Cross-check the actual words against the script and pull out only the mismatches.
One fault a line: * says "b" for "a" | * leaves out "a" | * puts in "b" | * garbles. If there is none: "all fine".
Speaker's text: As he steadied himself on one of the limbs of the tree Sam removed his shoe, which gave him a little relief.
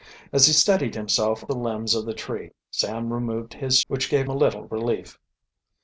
* leaves out "on one of"
* leaves out "shoe"
* leaves out "him"